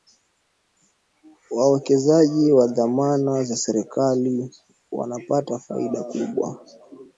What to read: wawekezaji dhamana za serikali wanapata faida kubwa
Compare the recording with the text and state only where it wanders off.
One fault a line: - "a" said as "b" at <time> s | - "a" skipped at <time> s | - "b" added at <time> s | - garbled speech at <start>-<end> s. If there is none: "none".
- "wa" added at 2.5 s